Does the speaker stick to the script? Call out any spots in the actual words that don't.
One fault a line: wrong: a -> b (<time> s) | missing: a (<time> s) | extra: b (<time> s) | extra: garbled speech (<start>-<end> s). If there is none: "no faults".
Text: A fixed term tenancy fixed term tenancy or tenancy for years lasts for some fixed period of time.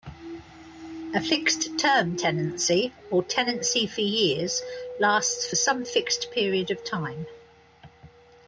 missing: fixed term tenancy (2.9 s)